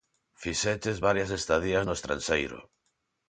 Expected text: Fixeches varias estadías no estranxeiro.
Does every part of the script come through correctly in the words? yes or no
yes